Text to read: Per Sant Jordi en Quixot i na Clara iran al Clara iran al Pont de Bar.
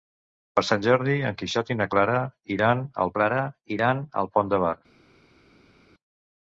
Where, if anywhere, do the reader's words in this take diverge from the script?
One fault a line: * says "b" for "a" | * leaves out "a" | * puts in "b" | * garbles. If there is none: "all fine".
all fine